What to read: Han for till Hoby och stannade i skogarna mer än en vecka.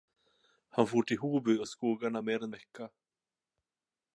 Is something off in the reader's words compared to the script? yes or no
yes